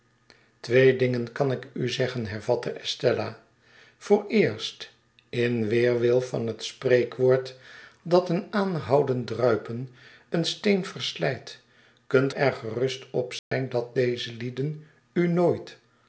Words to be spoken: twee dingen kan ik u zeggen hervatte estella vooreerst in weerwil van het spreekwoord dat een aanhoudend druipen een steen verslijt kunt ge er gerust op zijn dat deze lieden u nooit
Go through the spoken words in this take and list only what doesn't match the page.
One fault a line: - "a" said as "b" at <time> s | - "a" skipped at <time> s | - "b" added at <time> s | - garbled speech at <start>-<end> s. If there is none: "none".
- "ge" skipped at 12.3 s